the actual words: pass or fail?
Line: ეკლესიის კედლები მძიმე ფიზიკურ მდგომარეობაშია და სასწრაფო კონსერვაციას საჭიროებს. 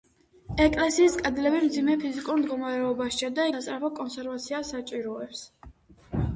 pass